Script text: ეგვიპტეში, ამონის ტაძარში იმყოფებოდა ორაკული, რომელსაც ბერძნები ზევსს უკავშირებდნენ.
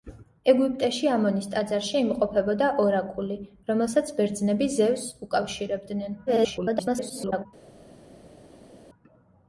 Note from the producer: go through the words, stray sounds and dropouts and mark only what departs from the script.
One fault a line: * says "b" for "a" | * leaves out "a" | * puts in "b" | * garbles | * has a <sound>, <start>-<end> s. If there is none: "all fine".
* garbles